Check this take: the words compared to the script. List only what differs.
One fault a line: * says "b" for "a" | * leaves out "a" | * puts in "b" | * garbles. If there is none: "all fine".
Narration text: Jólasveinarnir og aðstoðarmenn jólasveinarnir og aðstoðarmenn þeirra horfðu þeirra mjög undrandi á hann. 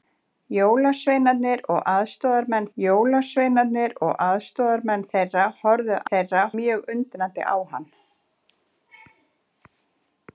all fine